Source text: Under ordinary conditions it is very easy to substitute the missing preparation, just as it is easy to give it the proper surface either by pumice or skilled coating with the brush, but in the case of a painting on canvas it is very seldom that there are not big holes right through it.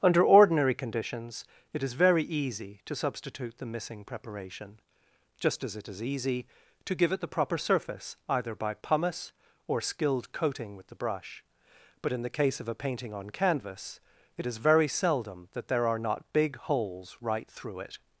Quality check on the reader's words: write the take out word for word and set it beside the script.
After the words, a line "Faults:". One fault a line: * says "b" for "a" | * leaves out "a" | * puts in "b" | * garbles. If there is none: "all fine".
Under ordinary conditions it is very easy to substitute the missing preparation, just as it is easy to give it the proper surface either by pumice or skilled coating with the brush, but in the case of a painting on canvas it is very seldom that there are not big holes right through it.
Faults:
all fine